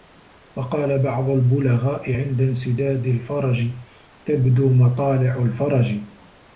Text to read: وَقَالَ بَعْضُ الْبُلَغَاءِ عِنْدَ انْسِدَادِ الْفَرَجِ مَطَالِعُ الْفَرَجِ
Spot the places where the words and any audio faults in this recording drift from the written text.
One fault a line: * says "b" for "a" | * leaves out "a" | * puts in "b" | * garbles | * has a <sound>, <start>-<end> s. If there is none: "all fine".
* puts in "تَبْدُو"